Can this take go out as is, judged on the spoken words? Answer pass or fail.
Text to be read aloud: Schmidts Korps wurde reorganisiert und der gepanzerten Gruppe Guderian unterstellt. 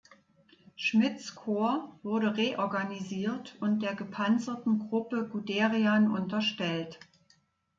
pass